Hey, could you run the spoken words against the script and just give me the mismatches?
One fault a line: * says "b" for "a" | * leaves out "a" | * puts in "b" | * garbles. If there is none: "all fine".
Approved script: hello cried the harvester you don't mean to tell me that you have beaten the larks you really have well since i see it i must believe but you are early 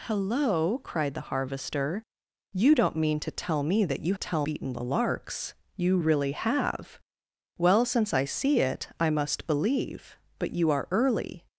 * says "tell" for "have"